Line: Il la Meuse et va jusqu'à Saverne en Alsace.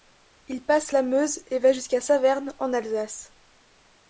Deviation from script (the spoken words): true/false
true